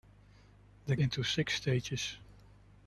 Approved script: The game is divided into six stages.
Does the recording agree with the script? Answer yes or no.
no